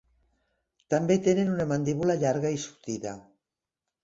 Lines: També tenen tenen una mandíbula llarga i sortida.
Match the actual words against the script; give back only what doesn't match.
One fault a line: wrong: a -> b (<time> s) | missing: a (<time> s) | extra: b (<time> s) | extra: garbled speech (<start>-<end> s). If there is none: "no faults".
missing: tenen (1.5 s)